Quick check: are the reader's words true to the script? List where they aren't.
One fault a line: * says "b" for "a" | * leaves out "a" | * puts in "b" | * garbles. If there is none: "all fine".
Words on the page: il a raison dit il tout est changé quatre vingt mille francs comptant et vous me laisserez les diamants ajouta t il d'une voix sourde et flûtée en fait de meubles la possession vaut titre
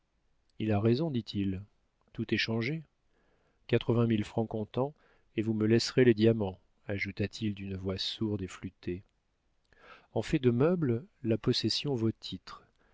all fine